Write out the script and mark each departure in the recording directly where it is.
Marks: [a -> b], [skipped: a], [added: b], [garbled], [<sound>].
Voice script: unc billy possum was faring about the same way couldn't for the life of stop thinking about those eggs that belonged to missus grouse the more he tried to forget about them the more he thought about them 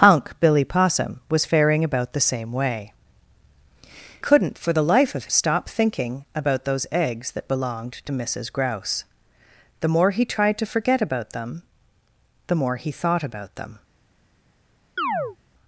unc billy possum was faring about the same way couldn't for the life of stop thinking about those eggs that belonged to missus grouse the more he tried to forget about them the more he thought about them [chirp]